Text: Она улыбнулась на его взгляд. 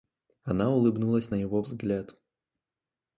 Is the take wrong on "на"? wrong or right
right